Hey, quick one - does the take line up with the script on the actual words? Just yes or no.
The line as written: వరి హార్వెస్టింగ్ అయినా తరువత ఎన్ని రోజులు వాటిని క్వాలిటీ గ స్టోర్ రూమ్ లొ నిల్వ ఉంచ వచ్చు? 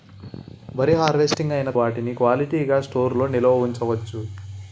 no